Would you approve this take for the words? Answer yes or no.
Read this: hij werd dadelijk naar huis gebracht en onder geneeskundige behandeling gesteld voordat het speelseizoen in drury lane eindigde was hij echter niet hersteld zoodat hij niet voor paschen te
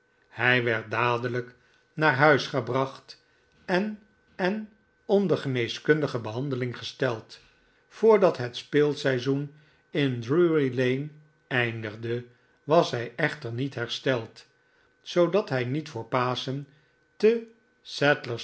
no